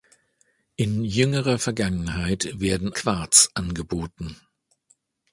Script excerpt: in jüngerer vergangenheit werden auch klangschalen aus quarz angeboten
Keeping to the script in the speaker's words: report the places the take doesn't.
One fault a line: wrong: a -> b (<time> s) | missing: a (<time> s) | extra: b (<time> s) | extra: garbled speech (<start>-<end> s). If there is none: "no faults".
missing: auch klangschalen aus (2.9 s)